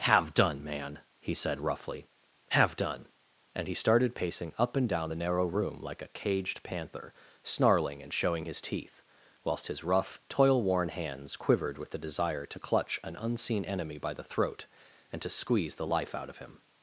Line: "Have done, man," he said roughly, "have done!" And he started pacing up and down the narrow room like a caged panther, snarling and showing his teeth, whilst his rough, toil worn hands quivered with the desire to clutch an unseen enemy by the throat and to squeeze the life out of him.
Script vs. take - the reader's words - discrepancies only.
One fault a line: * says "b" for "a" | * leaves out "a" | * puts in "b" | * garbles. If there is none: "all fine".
all fine